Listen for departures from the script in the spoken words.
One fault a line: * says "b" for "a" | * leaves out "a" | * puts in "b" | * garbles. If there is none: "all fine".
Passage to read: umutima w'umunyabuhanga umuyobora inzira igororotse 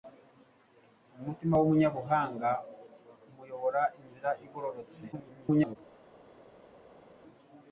* garbles